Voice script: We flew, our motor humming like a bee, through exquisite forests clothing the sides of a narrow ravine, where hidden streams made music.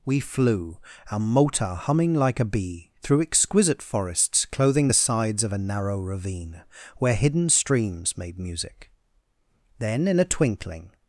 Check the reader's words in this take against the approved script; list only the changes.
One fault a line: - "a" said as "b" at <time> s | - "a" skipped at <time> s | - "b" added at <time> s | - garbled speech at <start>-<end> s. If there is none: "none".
- "Then in a twinkling" added at 9.8 s